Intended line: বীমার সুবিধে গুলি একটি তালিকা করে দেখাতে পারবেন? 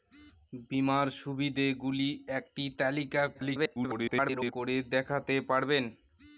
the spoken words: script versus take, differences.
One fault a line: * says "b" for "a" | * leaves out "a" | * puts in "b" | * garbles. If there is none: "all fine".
* garbles